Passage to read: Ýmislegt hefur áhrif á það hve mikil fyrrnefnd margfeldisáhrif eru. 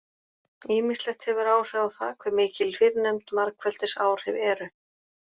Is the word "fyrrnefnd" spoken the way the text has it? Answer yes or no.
yes